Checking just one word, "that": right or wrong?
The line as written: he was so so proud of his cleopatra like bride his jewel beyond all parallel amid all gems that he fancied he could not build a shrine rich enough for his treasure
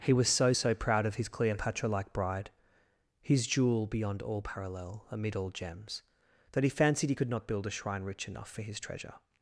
right